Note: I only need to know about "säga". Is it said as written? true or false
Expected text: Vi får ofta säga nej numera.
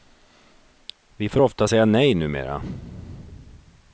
true